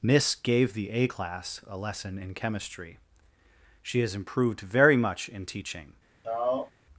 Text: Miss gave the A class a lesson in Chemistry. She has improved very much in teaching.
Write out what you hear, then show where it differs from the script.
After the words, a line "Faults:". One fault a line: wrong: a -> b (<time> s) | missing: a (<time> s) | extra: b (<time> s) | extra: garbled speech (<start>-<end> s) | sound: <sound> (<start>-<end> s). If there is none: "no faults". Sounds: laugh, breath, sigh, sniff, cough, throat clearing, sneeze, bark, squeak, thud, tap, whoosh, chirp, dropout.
Miss gave the A class a lesson in Chemistry. She has improved very much in teaching.
Faults:
sound: sigh (6.2-6.7 s)